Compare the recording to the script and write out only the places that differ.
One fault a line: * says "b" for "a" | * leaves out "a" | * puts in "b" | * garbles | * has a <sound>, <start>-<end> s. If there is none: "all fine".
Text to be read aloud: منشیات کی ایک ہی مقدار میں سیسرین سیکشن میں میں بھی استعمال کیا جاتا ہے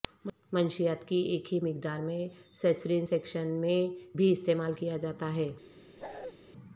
* leaves out "میں"
* has a bark, 6.0-6.3 s